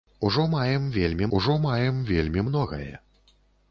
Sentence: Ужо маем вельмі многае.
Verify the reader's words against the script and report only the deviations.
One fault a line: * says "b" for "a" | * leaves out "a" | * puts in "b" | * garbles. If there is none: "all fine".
* puts in "ужо маем вельмі"